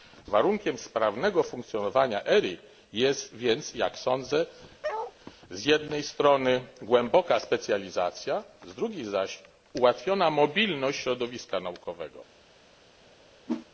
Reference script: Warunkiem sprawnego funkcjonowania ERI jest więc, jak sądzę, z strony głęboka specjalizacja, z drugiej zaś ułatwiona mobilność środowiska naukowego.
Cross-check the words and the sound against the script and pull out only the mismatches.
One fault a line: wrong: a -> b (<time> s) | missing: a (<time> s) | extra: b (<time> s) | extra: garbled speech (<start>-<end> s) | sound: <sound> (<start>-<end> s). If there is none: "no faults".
sound: bark (4.8-5.1 s)
extra: jednej (5.6 s)
sound: whoosh (13.5-13.7 s)